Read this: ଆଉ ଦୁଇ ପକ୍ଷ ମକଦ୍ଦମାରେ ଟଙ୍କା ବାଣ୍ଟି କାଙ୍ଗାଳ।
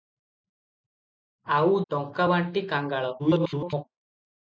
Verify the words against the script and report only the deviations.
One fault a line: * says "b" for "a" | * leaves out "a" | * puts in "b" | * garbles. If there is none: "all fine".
* leaves out "ଦୁଇ ପକ୍ଷ ମକଦ୍ଦମାରେ"
* garbles